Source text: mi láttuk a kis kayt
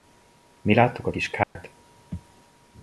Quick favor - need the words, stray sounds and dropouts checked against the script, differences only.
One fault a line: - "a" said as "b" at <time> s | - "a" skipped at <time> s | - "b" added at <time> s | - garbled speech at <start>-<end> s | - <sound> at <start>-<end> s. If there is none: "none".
- dropout at 1.4-1.6 s